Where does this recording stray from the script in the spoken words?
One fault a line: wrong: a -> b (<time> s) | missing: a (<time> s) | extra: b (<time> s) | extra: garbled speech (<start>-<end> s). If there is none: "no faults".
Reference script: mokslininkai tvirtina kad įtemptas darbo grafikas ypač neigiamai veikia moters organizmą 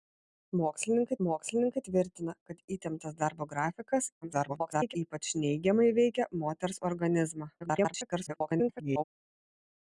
extra: mokslininkai (1.3 s)
extra: garbled speech (4.2-5.0 s)
extra: garbled speech (7.6-9.0 s)